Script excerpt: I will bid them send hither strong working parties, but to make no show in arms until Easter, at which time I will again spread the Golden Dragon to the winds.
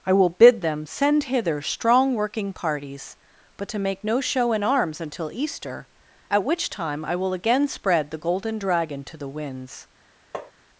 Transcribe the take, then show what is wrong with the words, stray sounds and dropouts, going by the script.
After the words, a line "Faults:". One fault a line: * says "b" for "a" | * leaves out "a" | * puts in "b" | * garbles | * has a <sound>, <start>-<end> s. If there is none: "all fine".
I will bid them send hither strong working parties, but to make no show in arms until Easter, at which time I will again spread the Golden Dragon to the winds.
Faults:
* has a tap, 10.3-10.5 s